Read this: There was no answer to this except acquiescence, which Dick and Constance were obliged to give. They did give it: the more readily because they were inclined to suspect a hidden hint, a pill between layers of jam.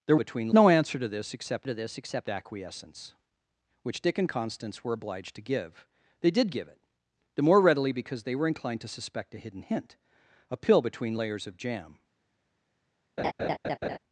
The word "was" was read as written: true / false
false